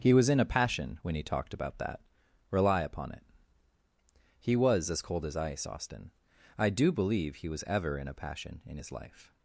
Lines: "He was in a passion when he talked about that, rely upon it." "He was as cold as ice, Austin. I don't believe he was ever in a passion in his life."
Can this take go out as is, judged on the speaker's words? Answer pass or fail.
fail